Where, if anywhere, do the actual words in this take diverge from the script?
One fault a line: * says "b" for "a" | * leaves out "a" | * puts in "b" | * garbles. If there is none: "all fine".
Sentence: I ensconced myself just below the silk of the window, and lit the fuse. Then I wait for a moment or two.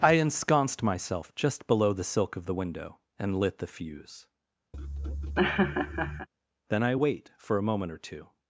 all fine